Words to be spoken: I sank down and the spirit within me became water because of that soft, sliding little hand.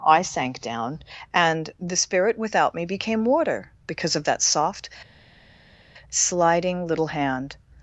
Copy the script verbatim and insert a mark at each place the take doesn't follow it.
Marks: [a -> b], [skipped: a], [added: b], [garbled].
I sank down and the spirit [within -> without] me became water because of that soft, sliding little hand.